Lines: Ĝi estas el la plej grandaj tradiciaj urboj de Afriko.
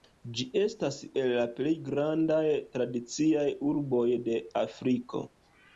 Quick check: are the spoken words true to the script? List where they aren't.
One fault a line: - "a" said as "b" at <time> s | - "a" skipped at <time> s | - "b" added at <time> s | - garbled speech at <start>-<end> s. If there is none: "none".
none